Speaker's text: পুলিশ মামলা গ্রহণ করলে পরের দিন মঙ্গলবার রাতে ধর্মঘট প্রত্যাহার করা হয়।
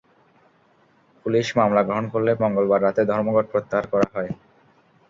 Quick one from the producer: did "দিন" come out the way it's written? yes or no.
no